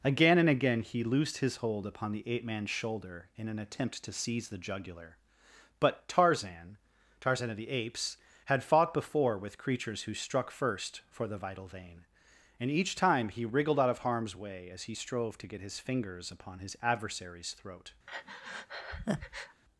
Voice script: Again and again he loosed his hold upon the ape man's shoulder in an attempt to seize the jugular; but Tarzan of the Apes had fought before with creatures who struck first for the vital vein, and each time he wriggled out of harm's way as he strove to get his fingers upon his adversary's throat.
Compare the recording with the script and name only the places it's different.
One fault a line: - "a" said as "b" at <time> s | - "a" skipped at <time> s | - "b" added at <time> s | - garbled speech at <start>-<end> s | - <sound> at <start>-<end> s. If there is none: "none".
- "Tarzan" added at 7.2 s
- breath at 18.1-19.6 s